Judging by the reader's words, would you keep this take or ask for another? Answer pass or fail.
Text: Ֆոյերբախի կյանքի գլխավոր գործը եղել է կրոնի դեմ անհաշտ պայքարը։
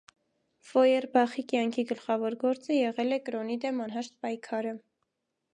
pass